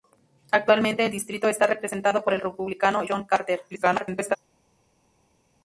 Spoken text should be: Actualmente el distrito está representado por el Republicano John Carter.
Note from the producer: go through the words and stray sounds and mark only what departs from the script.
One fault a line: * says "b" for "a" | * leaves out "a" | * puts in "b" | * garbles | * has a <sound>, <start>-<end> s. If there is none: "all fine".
* garbles